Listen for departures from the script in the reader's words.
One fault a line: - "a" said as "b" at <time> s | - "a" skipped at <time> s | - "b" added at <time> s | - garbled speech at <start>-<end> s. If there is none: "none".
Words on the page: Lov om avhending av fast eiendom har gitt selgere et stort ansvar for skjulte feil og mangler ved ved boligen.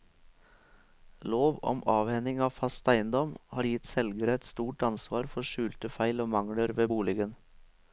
- "ved" skipped at 6.9 s